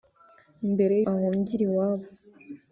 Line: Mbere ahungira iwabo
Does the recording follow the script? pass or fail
pass